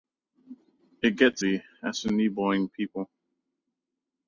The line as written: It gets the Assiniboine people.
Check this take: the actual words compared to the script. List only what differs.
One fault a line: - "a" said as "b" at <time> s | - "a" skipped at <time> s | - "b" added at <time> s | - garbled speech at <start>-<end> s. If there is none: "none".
none